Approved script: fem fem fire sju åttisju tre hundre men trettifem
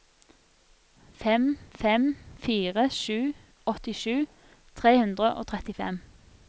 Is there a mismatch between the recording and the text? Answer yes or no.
yes